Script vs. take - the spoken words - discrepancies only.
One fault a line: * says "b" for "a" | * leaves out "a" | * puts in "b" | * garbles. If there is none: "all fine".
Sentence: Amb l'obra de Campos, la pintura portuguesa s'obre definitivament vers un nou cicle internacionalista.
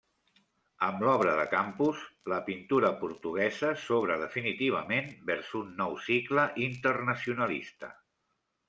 all fine